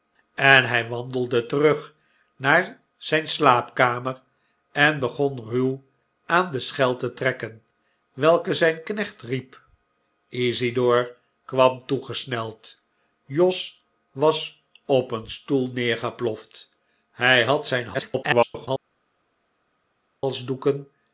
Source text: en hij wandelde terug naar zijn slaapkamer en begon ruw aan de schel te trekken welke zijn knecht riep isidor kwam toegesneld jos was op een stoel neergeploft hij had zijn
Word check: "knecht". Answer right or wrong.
right